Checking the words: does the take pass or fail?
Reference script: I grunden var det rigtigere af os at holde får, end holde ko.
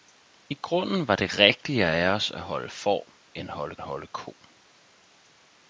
fail